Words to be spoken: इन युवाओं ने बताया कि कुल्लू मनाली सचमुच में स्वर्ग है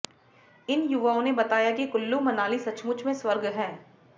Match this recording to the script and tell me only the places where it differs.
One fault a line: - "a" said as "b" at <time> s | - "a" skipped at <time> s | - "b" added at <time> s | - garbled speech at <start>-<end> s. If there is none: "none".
none